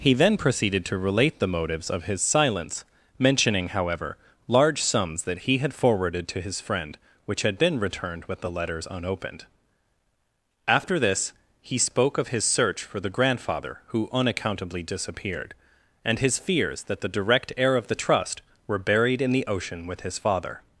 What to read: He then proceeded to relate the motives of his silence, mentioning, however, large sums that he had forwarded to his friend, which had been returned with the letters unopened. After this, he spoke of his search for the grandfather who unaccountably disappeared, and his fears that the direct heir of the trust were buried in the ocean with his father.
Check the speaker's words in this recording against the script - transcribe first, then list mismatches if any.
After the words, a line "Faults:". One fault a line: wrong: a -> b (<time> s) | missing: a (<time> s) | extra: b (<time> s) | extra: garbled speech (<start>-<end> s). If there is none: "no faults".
He then proceeded to relate the motives of his silence, mentioning, however, large sums that he had forwarded to his friend, which had been returned with the letters unopened. After this, he spoke of his search for the grandfather who unaccountably disappeared, and his fears that the direct heir of the trust were buried in the ocean with his father.
Faults:
no faults